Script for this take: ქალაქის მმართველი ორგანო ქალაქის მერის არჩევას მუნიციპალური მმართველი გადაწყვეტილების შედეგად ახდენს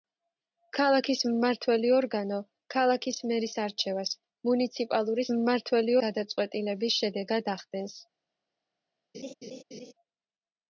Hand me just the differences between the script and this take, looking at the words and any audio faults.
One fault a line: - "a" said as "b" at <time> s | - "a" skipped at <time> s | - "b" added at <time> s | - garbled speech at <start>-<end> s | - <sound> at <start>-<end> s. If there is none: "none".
- laugh at 9.1-9.9 s